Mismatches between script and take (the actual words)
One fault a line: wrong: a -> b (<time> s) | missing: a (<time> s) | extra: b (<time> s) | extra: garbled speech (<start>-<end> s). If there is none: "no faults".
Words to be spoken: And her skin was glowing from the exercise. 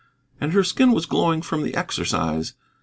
no faults